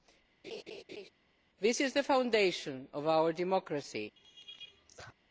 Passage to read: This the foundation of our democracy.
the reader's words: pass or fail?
fail